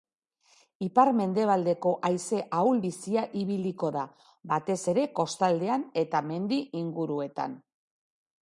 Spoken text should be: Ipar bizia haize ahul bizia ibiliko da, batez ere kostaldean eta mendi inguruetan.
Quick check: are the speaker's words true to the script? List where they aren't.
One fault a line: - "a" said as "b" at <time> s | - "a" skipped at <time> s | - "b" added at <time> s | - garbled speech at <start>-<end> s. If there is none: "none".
- "bizia" said as "mendebaldeko" at 1.2 s